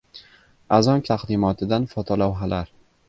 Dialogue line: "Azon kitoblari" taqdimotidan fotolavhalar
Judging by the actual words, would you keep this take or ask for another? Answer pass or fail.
fail